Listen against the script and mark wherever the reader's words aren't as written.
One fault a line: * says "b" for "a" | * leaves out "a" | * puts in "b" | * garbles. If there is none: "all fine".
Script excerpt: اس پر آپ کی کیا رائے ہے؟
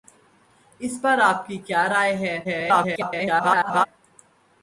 * garbles